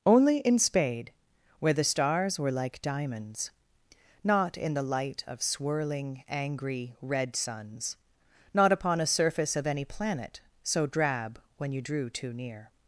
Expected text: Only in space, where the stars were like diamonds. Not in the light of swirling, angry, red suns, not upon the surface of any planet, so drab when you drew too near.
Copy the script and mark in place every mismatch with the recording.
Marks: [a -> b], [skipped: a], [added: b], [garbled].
Only in [space, -> spade] where the stars were like diamonds. Not in the light of swirling, angry, red suns, not upon [the -> a] surface of any planet, so drab when you drew too near.